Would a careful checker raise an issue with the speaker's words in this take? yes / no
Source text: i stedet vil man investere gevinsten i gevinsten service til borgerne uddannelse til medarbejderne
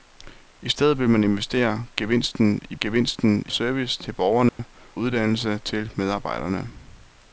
no